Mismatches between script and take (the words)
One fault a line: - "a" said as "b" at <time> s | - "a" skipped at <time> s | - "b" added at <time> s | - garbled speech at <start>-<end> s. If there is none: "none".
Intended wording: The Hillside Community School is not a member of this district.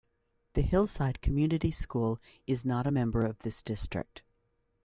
none